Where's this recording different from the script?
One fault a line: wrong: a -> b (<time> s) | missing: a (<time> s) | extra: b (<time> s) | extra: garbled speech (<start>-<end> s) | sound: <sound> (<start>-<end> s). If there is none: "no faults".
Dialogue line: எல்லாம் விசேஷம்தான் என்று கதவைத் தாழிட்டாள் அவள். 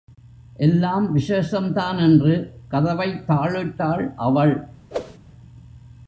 sound: whoosh (4.9-5.2 s)